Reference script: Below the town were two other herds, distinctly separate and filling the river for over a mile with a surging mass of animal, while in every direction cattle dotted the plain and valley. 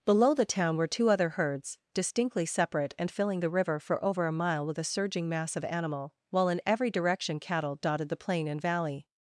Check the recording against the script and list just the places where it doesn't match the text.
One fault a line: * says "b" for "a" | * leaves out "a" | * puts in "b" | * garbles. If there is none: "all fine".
all fine